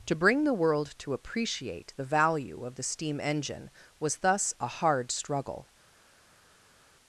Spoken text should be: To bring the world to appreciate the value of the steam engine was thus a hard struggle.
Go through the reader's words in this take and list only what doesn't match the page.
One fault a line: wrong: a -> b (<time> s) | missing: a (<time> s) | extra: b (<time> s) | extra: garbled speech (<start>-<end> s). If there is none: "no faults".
no faults